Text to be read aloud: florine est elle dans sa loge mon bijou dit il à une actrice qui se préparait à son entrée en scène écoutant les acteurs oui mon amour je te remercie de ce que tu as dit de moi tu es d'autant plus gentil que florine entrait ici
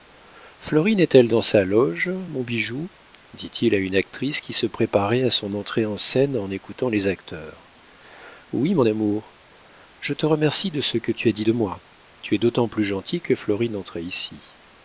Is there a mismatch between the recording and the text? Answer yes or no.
yes